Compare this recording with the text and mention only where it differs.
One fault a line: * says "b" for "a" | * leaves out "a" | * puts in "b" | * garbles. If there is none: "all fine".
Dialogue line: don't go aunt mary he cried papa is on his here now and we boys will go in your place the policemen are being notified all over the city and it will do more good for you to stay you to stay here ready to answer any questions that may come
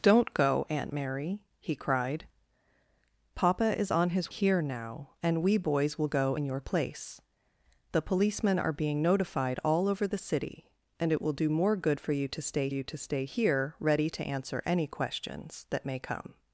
all fine